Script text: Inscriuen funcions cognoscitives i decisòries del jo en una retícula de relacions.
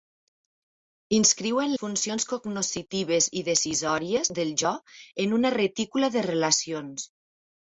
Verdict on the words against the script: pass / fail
pass